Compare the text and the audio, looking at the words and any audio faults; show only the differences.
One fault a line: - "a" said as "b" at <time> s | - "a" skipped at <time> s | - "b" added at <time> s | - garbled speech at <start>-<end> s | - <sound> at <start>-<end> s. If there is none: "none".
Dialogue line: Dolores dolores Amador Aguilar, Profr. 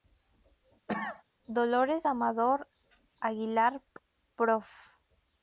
- cough at 0.9-1.2 s
- "dolores" skipped at 2.1 s